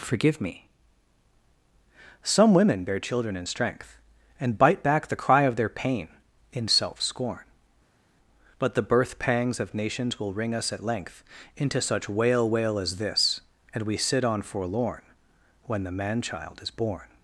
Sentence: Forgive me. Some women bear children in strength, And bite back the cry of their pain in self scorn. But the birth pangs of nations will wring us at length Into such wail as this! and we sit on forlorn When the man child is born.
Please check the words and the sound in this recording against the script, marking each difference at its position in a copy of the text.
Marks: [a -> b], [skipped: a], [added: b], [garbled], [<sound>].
Forgive me. Some women bear children in strength, And bite back the cry of their pain in self scorn. But the birth pangs of nations will wring us at length Into such wail [added: wail] as this! and we sit on forlorn When the man child is born.